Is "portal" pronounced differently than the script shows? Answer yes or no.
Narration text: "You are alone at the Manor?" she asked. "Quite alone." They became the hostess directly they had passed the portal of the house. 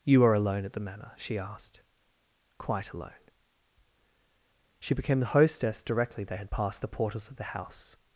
yes